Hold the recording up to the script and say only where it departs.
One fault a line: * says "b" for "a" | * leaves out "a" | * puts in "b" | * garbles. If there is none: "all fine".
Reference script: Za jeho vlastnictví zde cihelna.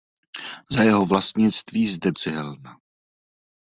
all fine